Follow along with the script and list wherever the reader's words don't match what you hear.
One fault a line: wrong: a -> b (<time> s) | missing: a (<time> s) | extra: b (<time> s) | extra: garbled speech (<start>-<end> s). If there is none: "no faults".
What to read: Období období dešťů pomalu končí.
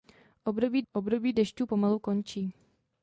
no faults